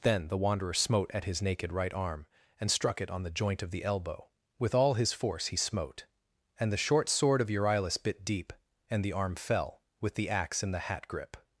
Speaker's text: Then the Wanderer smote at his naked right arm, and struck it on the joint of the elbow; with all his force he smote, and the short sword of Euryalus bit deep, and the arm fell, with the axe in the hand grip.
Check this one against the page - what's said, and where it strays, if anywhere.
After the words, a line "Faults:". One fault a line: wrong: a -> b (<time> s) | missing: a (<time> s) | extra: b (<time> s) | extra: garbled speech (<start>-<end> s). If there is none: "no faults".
Then the Wanderer smote at his naked right arm, and struck it on the joint of the elbow; with all his force he smote, and the short sword of Euryalus bit deep, and the arm fell, with the axe in the hat grip.
Faults:
wrong: hand -> hat (10.8 s)